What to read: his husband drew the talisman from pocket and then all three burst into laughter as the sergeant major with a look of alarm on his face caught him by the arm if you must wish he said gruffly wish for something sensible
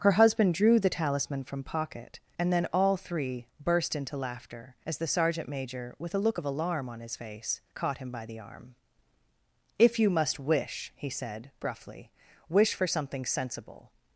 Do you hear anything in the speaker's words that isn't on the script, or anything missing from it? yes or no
yes